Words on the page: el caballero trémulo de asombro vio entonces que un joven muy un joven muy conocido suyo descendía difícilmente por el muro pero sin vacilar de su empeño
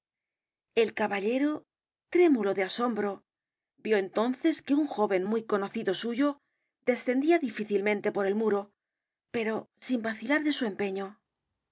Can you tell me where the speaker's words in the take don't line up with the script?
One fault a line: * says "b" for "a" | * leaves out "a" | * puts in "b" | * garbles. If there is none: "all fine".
* leaves out "un joven muy"